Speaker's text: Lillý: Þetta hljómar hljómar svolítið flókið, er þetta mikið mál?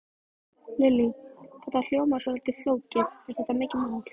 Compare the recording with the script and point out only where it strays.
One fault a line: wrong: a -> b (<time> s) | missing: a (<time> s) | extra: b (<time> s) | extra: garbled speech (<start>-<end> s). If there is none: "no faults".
missing: hljómar (2.3 s)